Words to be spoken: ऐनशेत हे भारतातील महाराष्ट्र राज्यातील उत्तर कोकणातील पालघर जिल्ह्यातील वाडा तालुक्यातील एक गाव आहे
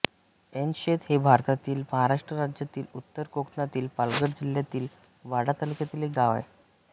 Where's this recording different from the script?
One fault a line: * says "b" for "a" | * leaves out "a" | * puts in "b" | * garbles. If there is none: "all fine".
all fine